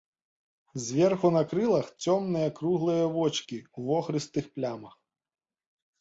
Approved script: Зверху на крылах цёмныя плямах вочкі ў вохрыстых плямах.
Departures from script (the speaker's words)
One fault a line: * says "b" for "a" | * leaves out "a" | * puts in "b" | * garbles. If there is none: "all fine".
* says "круглыя" for "плямах"